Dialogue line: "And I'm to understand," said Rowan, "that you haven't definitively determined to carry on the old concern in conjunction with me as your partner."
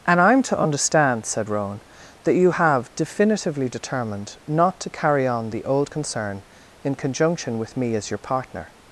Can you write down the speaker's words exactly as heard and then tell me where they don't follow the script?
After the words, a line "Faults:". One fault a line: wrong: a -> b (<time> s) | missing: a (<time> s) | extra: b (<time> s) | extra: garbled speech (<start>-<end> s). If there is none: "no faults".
"And I'm to understand," said Rowan, "that you have definitively determined not to carry on the old concern in conjunction with me as your partner."
Faults:
wrong: haven't -> have (2.5 s)
extra: not (4.5 s)